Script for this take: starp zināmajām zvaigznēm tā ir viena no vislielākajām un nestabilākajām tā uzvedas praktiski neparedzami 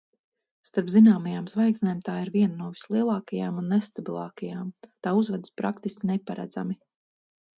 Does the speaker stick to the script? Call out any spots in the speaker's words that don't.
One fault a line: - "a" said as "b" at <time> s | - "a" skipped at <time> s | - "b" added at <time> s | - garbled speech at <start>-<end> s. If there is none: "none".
none